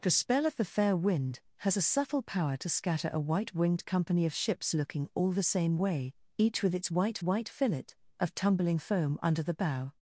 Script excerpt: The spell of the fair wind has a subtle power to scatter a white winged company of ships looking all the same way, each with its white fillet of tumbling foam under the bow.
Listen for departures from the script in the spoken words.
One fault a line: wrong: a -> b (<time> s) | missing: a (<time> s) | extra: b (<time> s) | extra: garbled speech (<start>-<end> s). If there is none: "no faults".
extra: white (7.2 s)